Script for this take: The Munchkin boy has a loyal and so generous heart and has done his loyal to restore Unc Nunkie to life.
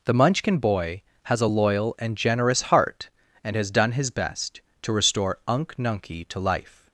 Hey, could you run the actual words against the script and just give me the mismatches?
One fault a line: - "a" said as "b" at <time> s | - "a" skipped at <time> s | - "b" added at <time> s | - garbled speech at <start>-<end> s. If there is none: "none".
- "so" skipped at 2.2 s
- "loyal" said as "best" at 4.1 s